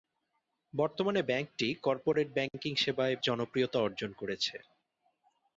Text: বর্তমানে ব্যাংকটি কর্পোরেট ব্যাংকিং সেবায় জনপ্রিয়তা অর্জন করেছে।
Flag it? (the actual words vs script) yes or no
no